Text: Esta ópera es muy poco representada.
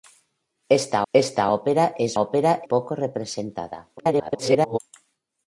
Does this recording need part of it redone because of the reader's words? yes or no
yes